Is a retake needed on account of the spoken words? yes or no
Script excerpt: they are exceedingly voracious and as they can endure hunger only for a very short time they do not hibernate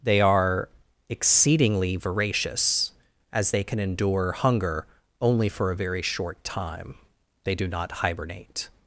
yes